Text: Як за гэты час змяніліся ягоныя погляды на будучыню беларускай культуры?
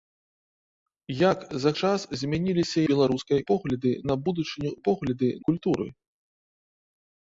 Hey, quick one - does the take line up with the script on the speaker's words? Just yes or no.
no